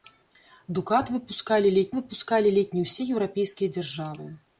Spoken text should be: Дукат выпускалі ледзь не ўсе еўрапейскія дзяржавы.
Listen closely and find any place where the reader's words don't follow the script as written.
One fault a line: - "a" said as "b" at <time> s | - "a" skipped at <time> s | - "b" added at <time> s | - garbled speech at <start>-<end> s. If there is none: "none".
- "выпускалі ледзь" added at 2.0 s